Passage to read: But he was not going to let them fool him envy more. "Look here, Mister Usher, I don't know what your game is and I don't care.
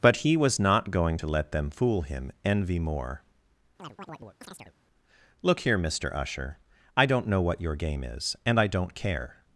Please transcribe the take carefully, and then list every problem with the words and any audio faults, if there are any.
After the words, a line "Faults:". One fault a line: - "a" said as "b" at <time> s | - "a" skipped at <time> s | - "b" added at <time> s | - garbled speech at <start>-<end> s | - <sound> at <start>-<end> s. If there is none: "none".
But he was not going to let them fool him envy more. "Look here, Mister Usher, I don't know what your game is and I don't care.
Faults:
- chirp at 3.8-4.7 s